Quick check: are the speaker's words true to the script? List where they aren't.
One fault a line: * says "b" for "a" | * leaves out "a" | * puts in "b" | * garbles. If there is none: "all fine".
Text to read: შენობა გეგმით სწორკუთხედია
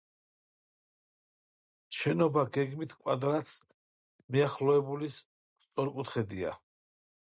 * puts in "კვადრატს მიახლოებული"